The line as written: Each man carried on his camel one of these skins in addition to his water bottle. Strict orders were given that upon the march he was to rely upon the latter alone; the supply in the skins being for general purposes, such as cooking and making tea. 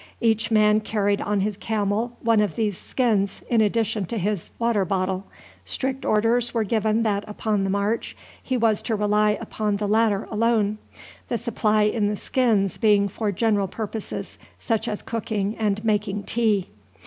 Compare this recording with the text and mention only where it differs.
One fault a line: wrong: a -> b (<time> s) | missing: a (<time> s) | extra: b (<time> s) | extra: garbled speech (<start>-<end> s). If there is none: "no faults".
no faults